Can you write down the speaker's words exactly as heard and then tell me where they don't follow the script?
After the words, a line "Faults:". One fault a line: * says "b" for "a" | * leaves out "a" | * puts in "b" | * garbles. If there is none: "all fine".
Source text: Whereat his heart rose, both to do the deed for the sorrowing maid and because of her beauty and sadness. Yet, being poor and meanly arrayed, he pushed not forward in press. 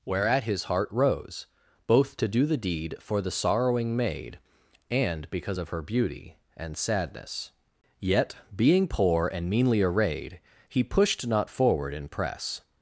Whereat his heart rose, both to do the deed for the sorrowing maid and because of her beauty and sadness. Yet, being poor and meanly arrayed, he pushed not forward in press.
Faults:
all fine